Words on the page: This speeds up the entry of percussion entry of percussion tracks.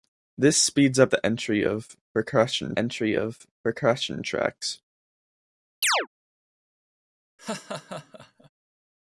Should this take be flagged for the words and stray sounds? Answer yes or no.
yes